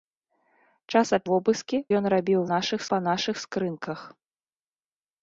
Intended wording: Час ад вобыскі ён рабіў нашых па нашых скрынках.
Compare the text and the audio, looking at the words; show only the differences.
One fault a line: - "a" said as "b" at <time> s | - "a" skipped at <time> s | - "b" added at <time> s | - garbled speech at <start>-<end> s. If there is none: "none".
none